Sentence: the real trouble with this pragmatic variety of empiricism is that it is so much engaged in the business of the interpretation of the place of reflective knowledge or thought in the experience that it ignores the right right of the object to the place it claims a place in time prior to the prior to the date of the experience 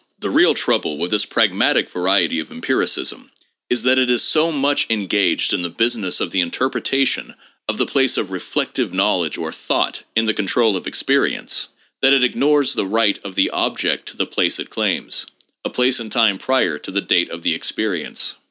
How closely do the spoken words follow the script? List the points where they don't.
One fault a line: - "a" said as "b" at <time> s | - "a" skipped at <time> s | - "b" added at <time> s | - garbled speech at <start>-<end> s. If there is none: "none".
- "control of" added at 10.3 s
- "right" skipped at 13.2 s
- "prior to the" skipped at 17.0 s